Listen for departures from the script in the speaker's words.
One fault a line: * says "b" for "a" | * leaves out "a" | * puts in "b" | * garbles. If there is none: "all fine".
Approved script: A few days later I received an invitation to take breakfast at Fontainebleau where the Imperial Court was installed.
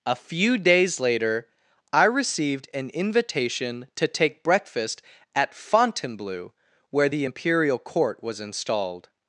all fine